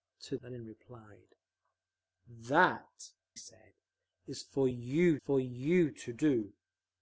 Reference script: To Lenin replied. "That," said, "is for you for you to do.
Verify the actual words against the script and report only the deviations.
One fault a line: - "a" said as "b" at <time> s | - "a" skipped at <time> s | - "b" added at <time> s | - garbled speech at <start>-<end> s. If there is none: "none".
none